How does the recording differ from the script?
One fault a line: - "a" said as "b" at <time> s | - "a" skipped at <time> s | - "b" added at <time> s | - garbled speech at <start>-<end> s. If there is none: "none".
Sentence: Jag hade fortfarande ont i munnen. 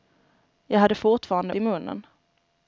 - "ont" skipped at 1.5 s